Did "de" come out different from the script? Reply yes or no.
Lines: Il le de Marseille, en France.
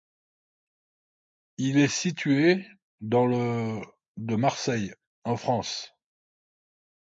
no